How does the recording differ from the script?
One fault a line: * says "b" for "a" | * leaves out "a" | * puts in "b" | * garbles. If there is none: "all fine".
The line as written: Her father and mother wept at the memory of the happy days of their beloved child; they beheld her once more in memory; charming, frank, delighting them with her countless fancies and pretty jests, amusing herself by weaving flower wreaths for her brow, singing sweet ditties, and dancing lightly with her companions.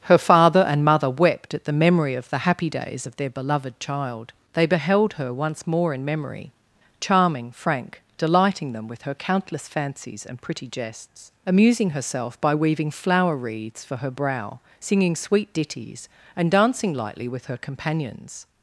all fine